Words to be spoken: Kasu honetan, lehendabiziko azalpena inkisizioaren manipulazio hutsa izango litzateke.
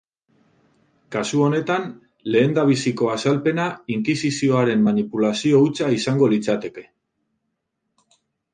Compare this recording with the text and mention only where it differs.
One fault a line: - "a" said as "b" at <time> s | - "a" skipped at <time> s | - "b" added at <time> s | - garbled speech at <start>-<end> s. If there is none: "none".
none